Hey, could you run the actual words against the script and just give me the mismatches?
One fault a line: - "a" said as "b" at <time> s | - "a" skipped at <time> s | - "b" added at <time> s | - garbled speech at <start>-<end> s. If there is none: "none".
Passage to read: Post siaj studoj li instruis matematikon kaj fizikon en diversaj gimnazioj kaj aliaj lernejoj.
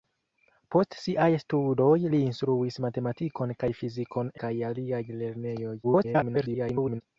- "en diversaj gimnazioj" skipped at 4.3 s
- garbled speech at 5.8-7.0 s